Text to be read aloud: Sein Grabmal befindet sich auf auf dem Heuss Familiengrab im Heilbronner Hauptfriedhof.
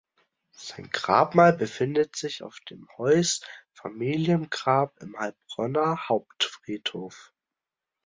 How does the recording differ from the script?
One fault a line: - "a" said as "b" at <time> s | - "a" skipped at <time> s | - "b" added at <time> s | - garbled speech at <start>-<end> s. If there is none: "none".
- "auf" skipped at 2.6 s